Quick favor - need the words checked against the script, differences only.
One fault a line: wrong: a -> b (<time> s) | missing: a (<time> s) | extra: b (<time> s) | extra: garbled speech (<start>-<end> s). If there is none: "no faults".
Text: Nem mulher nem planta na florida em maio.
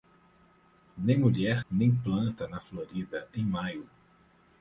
no faults